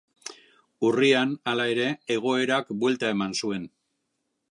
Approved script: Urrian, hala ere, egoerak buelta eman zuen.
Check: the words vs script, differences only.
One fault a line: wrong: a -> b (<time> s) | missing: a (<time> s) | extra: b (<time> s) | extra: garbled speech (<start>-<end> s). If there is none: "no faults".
no faults